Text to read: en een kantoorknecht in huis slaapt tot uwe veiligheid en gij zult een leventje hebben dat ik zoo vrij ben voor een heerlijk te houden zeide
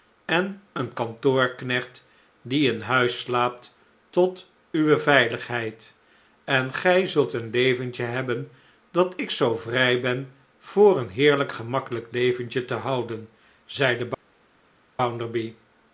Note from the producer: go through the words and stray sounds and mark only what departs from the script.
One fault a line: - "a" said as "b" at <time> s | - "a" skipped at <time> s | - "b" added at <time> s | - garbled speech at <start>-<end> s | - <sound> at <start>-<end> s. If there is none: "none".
- "die" added at 2.4 s
- "gemakkelijk leventje" added at 11.5 s